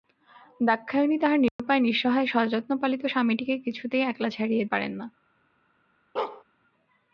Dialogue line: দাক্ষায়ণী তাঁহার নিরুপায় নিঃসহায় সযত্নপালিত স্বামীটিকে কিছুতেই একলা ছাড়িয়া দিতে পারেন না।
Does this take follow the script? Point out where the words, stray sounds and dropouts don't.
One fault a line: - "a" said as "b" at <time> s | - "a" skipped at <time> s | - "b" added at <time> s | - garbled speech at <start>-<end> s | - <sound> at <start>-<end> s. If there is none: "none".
- dropout at 1.5-1.6 s
- "দিতে" skipped at 4.7 s
- bark at 6.2-6.4 s